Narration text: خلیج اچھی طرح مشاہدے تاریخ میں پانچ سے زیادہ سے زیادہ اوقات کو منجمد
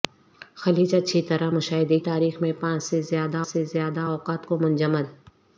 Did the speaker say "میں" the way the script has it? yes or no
yes